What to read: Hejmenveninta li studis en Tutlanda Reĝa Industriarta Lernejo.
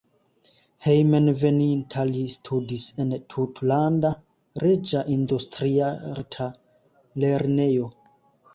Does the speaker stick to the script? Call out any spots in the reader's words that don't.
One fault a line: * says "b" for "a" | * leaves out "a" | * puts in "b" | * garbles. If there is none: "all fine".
all fine